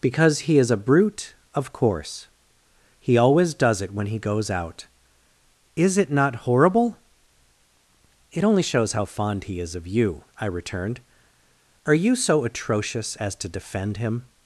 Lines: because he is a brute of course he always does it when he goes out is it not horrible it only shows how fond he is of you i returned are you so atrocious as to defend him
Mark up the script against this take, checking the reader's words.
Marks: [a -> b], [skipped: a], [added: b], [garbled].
because he is a brute of course he always does it when he goes out is it not horrible it only shows how fond he is of you i returned are you so atrocious as to defend him